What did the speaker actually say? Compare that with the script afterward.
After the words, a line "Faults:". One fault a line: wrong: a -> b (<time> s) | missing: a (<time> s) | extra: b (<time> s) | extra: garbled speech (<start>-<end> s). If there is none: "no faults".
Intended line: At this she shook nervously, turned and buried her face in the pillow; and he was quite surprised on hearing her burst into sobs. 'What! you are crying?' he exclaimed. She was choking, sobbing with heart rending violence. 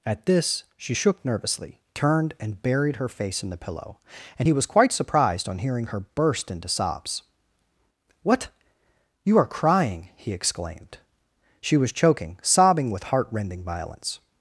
At this she shook nervously, turned and buried her face in the pillow; and he was quite surprised on hearing her burst into sobs. 'What! you are crying?' he exclaimed. She was choking, sobbing with heart rending violence.
Faults:
no faults